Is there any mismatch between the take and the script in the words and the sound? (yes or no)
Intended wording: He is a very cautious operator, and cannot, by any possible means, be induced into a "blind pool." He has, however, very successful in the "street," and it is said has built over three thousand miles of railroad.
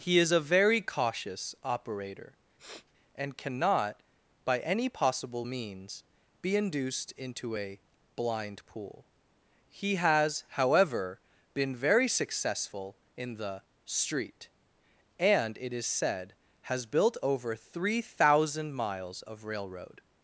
yes